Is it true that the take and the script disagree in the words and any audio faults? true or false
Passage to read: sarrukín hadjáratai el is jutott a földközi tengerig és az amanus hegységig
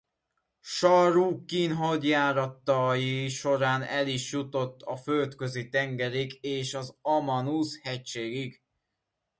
true